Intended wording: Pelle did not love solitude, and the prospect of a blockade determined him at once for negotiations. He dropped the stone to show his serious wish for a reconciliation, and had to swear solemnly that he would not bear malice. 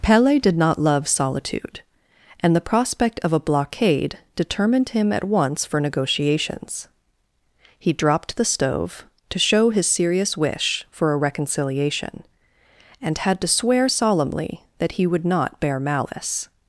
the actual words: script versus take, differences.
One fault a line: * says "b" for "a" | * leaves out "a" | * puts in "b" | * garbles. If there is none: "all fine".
* says "stove" for "stone"